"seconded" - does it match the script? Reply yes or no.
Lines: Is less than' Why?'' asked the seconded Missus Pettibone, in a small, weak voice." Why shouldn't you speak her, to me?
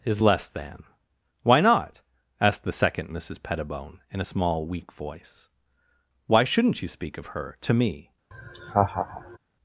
no